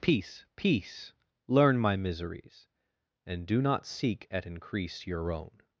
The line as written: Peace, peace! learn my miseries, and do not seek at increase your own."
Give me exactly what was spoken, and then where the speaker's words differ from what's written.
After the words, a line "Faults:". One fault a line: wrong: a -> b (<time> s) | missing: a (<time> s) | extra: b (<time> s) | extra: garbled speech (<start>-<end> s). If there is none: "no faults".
Peace, peace! learn my miseries, and do not seek at increase your own."
Faults:
no faults